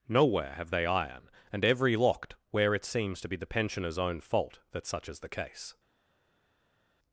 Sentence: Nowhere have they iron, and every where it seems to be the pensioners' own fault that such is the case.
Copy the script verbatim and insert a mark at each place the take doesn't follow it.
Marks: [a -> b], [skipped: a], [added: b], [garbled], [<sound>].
Nowhere have they iron, and every [added: locked] where it seems to be the pensioners' own fault that such is the case.